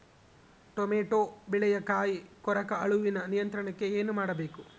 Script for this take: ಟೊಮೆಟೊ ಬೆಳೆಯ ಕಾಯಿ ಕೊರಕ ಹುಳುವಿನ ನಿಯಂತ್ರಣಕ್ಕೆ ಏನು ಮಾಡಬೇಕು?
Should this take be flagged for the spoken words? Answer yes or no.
no